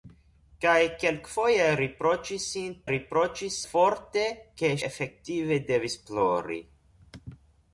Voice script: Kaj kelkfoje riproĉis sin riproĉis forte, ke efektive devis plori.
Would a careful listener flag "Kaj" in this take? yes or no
no